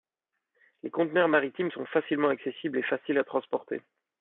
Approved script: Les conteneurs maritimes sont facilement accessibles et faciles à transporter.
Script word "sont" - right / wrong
right